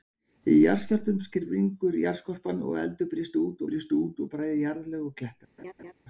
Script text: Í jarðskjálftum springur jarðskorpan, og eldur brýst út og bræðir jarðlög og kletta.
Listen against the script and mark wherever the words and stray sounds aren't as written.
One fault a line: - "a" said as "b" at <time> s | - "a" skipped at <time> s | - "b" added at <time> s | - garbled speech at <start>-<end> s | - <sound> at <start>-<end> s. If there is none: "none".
- "brýst út" added at 3.7 s
- laugh at 5.6-5.9 s